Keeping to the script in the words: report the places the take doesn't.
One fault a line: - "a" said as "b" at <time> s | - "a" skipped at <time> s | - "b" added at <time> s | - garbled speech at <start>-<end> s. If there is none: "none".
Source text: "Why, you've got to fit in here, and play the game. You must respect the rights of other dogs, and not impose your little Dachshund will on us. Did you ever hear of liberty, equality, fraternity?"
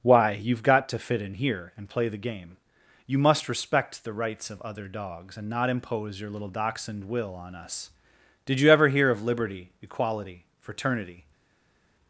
none